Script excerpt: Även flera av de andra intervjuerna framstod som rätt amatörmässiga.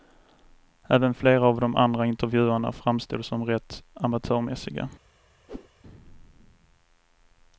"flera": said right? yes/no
yes